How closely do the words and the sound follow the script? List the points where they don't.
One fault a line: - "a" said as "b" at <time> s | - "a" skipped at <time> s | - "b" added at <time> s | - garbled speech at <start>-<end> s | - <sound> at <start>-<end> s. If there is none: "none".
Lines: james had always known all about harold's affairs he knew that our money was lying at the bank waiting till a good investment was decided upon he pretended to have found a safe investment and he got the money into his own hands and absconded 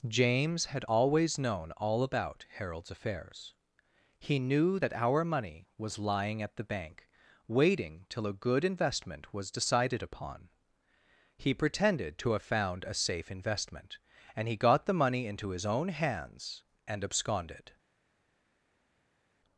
none